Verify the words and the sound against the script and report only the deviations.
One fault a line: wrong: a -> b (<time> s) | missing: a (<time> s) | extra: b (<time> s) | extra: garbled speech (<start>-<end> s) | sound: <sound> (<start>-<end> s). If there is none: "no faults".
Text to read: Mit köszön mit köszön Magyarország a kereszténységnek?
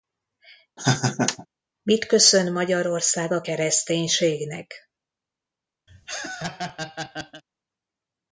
sound: laugh (0.8-1.5 s)
missing: mit köszön (2.5 s)
sound: laugh (5.9-7.4 s)